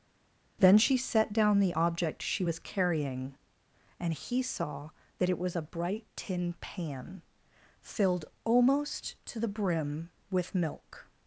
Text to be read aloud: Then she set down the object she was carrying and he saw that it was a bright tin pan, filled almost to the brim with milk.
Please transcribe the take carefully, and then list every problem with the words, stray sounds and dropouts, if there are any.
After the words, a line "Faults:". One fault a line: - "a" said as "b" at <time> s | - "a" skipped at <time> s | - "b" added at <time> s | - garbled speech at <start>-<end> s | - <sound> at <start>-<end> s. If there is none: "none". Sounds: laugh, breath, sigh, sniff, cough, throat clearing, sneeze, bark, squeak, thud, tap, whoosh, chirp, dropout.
Then she set down the object she was carrying and he saw that it was a bright tin pan, filled almost to the brim with milk.
Faults:
none